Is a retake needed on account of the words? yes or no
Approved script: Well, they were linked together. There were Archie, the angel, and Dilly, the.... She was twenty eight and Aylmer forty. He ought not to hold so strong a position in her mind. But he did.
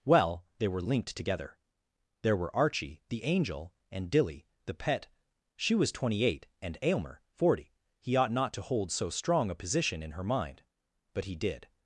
yes